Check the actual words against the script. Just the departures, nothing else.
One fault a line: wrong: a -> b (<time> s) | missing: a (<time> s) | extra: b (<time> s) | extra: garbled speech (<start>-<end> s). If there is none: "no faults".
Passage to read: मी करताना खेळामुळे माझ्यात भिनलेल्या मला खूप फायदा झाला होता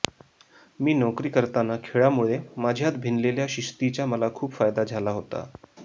extra: नोकरी (0.9 s)
extra: शिस्तीचा (3.5 s)